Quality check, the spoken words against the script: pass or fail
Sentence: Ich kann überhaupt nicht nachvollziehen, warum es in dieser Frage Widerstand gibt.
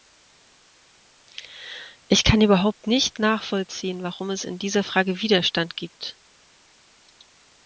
pass